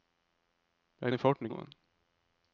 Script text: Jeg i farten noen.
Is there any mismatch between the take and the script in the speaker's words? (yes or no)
no